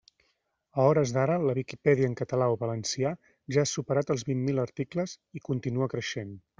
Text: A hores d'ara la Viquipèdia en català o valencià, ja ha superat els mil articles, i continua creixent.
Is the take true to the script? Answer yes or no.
no